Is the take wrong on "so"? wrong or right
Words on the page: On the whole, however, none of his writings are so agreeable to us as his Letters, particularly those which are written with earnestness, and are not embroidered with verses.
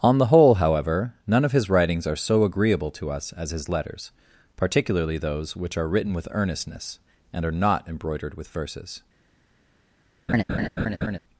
right